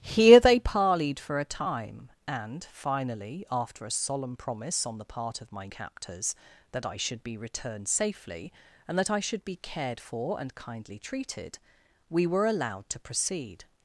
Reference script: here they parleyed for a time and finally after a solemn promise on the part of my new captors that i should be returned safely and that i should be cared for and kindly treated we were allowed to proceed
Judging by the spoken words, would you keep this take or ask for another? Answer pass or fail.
fail